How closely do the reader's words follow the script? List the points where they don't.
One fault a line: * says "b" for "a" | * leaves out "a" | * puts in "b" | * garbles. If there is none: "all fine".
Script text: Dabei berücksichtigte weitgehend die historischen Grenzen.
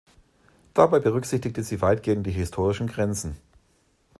* puts in "sie"